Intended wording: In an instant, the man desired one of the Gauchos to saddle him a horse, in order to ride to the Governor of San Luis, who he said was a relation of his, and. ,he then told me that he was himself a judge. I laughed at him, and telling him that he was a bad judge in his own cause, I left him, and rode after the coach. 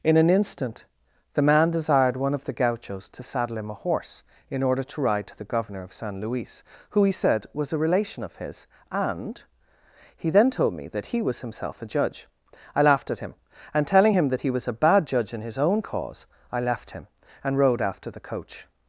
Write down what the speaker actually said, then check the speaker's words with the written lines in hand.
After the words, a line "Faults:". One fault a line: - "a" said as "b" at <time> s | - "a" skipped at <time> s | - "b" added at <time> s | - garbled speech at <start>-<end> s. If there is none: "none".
In an instant, the man desired one of the Gauchos to saddle him a horse, in order to ride to the Governor of San Luis, who he said was a relation of his, and. ,he then told me that he was himself a judge. I laughed at him, and telling him that he was a bad judge in his own cause, I left him, and rode after the coach.
Faults:
none